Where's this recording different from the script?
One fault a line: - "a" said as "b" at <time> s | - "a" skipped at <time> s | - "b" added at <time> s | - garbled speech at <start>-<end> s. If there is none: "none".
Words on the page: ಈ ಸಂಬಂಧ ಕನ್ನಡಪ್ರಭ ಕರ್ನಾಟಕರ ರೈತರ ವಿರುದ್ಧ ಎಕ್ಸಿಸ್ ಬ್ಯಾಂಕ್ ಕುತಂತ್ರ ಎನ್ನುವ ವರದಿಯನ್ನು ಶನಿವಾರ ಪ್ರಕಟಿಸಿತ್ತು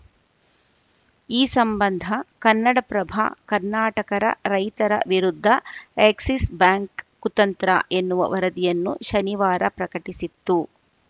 none